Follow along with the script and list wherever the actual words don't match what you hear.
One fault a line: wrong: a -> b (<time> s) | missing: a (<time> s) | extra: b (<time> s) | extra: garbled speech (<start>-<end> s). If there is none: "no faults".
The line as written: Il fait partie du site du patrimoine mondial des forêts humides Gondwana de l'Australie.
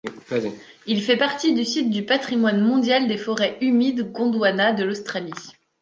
no faults